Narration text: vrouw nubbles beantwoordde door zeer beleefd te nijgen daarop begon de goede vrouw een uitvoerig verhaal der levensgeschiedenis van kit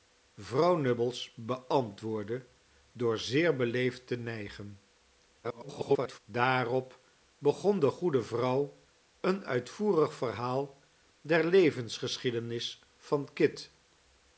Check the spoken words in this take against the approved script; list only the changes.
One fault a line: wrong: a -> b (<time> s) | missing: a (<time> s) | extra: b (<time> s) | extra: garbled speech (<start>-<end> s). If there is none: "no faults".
extra: garbled speech (5.4-6.2 s)